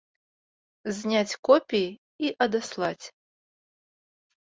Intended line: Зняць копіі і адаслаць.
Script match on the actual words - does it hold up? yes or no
yes